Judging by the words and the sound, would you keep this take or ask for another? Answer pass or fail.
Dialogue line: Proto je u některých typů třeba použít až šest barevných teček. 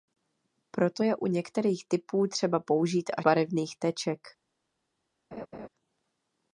fail